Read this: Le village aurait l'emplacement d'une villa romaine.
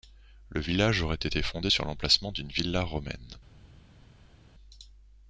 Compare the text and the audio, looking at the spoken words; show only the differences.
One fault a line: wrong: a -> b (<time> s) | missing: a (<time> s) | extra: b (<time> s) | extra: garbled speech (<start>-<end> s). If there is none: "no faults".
extra: été fondé sur (1.1 s)